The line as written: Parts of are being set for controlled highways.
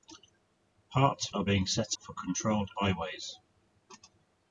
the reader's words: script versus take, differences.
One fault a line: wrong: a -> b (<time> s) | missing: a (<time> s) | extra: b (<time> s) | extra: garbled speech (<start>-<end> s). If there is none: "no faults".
no faults